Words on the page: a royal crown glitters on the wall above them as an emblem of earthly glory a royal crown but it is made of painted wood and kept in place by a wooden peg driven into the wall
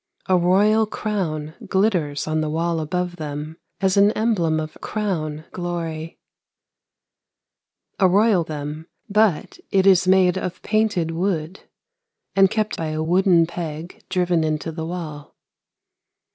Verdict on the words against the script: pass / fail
fail